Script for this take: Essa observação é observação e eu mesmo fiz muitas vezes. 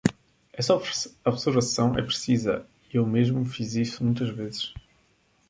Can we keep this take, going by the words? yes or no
no